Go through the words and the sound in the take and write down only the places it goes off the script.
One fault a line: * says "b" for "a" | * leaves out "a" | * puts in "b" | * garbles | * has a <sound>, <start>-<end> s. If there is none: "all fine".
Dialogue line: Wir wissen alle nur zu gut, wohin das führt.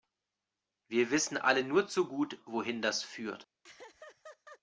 * has a laugh, 3.6-4.6 s